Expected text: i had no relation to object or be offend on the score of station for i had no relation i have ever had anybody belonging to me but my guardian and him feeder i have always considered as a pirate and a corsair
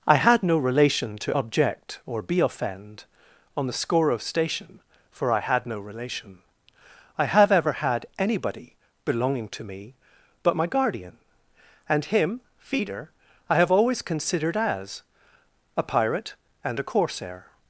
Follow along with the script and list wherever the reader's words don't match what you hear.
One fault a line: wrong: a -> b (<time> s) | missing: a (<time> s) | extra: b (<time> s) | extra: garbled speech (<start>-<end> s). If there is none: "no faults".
no faults